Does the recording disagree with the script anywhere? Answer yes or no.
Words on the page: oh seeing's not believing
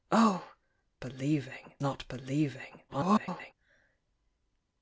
yes